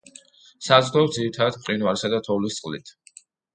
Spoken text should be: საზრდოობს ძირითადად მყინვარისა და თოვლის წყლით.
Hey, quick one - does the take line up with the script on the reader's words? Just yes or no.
yes